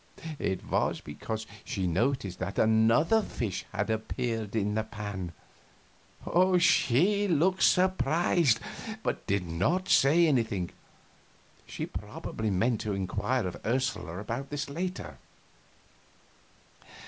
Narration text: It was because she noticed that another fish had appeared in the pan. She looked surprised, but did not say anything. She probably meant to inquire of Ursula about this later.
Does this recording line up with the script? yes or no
yes